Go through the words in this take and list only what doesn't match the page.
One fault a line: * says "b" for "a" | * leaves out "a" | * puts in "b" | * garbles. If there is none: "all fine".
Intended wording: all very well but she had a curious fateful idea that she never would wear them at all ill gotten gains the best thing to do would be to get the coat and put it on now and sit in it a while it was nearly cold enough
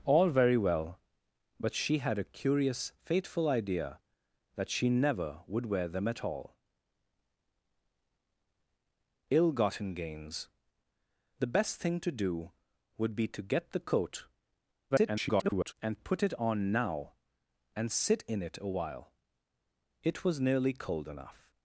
* garbles